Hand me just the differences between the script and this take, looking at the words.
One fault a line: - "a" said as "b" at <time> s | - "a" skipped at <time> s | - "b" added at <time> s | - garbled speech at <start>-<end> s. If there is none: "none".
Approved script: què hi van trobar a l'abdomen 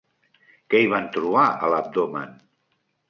none